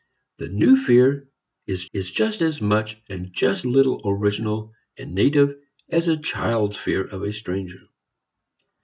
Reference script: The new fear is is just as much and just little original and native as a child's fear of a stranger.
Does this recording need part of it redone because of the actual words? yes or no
no